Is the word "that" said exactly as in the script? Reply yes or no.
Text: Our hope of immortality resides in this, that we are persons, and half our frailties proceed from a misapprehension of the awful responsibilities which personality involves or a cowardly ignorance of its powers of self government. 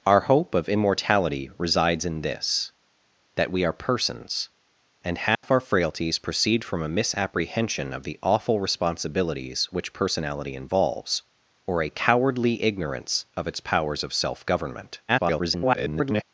yes